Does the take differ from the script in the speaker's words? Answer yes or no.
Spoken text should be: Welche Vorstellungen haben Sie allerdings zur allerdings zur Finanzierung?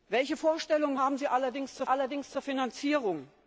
no